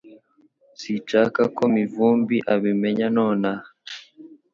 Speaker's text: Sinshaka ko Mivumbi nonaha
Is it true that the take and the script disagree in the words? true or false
true